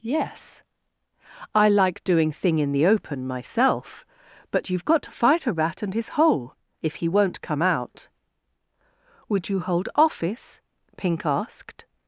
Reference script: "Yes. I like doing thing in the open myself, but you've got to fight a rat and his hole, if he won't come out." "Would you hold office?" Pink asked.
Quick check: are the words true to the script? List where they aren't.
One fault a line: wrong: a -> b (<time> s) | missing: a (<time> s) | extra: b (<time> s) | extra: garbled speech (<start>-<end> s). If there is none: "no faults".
no faults